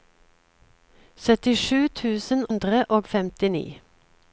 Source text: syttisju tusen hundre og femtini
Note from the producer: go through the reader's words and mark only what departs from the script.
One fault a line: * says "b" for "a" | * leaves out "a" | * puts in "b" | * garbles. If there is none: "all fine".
all fine